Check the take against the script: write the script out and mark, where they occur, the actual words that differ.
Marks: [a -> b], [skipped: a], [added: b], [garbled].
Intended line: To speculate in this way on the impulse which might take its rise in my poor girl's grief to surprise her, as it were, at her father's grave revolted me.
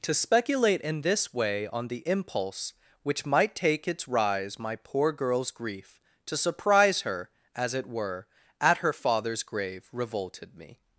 To speculate in this way on the impulse which might take its rise [skipped: in] my poor girl's grief to surprise her, as it were, at her father's grave revolted me.